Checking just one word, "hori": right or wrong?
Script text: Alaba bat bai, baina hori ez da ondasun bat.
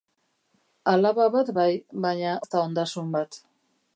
wrong